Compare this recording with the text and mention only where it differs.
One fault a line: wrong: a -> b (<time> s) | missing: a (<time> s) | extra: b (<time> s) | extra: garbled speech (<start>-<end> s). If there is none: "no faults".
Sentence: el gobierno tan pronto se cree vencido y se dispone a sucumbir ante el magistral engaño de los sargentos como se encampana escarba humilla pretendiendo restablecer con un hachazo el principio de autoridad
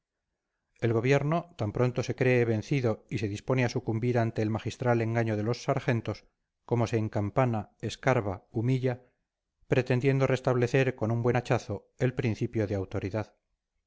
extra: buen (11.2 s)